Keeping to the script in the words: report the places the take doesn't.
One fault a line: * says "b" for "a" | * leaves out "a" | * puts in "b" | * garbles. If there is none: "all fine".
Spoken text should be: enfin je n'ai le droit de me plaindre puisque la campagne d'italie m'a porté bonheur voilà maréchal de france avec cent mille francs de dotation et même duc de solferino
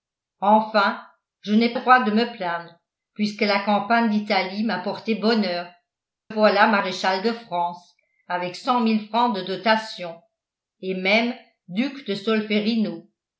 all fine